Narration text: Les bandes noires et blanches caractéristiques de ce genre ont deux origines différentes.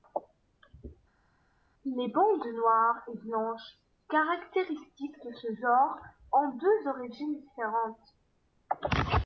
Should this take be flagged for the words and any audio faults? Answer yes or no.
no